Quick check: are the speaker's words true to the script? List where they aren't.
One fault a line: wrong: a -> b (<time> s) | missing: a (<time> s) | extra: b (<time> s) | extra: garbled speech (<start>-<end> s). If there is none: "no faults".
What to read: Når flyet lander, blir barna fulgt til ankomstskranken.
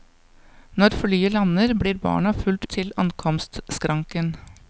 no faults